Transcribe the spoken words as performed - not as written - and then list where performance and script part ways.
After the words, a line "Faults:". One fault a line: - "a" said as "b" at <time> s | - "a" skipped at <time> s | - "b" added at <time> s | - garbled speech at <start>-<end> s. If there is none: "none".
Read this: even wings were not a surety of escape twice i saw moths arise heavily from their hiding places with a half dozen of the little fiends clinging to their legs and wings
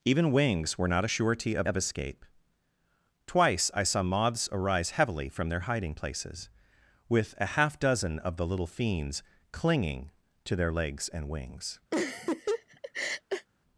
even wings were not a surety of of escape twice i saw moths arise heavily from their hiding places with a half dozen of the little fiends clinging to their legs and wings
Faults:
- "of" added at 1.6 s